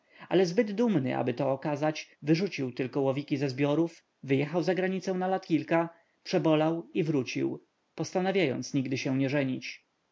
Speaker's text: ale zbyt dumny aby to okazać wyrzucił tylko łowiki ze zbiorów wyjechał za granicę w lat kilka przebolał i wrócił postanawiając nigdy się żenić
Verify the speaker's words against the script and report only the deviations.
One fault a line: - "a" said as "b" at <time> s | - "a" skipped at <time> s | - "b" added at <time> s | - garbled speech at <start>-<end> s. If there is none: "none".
- "w" said as "na" at 5.1 s
- "nie" added at 9.2 s